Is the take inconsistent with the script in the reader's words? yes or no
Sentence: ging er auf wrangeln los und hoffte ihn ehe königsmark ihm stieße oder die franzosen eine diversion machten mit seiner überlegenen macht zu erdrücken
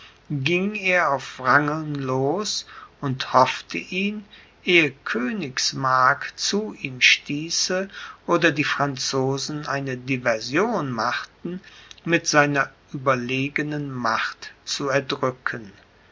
yes